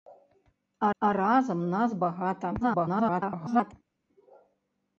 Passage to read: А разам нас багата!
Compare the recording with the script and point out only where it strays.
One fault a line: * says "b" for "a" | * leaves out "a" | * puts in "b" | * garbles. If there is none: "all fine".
* puts in "а"
* garbles